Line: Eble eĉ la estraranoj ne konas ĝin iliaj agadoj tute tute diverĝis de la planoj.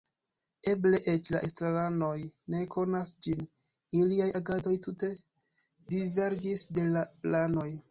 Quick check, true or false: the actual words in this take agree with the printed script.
false